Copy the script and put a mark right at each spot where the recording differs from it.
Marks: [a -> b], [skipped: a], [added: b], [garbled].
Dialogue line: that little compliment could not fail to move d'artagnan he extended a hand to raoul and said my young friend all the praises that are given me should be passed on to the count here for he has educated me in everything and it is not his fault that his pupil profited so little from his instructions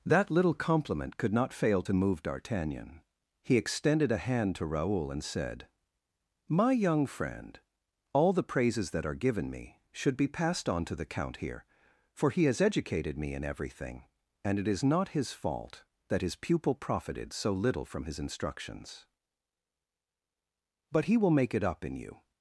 that little compliment could not fail to move d'artagnan he extended a hand to raoul and said my young friend all the praises that are given me should be passed on to the count here for he has educated me in everything and it is not his fault that his pupil profited so little from his instructions [added: but he will make it up in you]